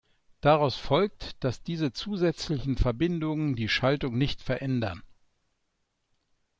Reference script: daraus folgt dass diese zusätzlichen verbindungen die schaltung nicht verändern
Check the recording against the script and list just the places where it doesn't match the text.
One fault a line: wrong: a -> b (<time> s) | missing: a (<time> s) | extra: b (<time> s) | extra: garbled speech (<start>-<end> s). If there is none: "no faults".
no faults